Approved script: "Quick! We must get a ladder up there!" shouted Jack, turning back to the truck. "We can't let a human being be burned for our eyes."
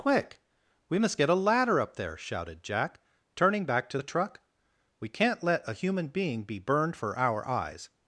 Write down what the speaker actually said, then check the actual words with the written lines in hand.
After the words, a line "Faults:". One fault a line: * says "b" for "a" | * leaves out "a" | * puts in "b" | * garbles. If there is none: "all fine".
"Quick! We must get a ladder up there!" shouted Jack, turning back to the truck. "We can't let a human being be burned for our eyes."
Faults:
all fine